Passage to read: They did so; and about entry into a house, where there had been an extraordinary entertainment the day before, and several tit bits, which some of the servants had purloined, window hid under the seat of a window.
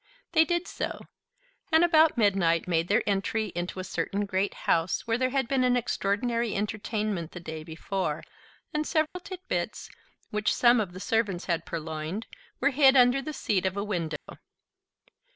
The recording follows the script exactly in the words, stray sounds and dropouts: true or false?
false